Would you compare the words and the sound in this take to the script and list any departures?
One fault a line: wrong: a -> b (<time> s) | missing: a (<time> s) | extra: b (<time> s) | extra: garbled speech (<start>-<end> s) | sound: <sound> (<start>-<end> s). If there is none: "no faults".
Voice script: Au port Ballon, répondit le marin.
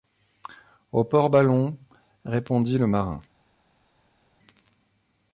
no faults